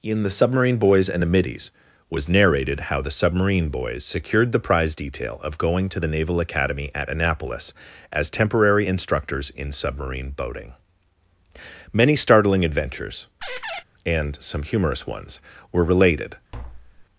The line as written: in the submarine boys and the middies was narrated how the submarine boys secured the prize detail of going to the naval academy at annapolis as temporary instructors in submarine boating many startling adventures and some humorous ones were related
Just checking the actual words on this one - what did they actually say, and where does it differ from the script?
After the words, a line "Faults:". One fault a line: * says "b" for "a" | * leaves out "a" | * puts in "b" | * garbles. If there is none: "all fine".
in the submarine boys and the middies was narrated how the submarine boys secured the prize detail of going to the naval academy at annapolis as temporary instructors in submarine boating many startling adventures and some humorous ones were related
Faults:
all fine